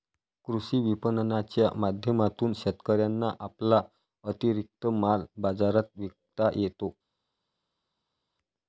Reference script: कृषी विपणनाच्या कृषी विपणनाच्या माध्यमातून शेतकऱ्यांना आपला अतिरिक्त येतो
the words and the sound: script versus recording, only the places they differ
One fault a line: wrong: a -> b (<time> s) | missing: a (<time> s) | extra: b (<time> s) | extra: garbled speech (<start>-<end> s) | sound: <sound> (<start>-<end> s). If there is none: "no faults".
missing: कृषी विपणनाच्या (1.7 s)
extra: माल बाजारात विकता (4.9 s)